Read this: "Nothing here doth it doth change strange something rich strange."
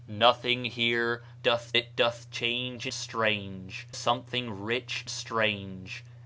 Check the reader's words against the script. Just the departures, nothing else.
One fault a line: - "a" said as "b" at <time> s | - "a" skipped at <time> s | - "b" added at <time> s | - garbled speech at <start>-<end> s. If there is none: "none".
none